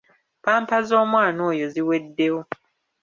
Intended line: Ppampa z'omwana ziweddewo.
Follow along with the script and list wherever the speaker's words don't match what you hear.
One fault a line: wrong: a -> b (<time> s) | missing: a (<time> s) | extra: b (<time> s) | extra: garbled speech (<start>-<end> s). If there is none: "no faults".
extra: oyo (1.5 s)